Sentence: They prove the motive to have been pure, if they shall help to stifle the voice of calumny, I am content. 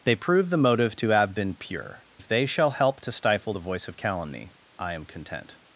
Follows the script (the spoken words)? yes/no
yes